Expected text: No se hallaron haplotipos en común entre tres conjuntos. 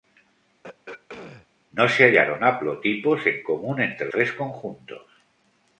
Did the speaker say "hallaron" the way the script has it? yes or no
yes